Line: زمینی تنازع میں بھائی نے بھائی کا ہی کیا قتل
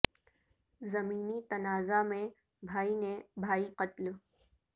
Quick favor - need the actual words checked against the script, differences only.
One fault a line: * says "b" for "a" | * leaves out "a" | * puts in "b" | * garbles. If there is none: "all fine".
* leaves out "کا ہی کیا"